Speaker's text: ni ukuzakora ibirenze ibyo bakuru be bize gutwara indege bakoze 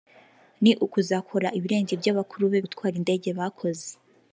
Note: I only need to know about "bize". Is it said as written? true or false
false